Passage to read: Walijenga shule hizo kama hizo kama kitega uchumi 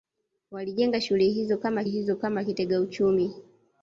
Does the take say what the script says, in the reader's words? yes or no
yes